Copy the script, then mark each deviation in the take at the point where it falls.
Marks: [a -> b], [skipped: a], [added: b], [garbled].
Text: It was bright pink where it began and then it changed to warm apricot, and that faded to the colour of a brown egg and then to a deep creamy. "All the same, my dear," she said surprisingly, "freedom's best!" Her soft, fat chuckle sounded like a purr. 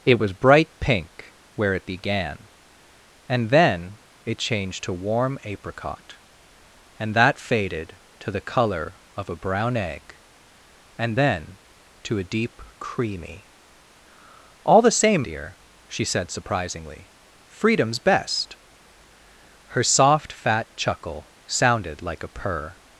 It was bright pink where it began and then it changed to warm apricot, and that faded to the colour of a brown egg and then to a deep creamy. "All the same, [skipped: my] dear," she said surprisingly, "freedom's best!" Her soft, fat chuckle sounded like a purr.